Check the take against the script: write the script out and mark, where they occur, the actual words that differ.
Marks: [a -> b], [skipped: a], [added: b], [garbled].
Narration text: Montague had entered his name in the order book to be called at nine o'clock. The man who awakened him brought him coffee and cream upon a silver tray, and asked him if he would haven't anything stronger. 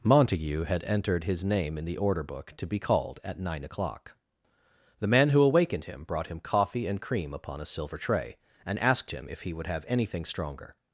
Montague had entered his name in the order book to be called at nine o'clock. The man who awakened him brought him coffee and cream upon a silver tray, and asked him if he would [haven't -> have] anything stronger.